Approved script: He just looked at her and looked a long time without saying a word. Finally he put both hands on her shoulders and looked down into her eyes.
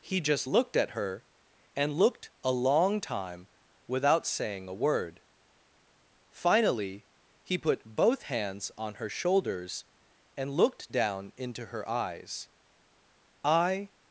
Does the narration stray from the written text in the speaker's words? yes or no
yes